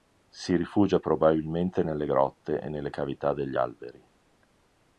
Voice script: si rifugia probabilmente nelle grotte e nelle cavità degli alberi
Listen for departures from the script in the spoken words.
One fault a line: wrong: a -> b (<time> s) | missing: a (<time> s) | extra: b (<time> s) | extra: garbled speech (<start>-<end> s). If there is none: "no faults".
no faults